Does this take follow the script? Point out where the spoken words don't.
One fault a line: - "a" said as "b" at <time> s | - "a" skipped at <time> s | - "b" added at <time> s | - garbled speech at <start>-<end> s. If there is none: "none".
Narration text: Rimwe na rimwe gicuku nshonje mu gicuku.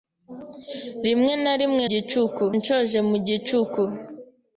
none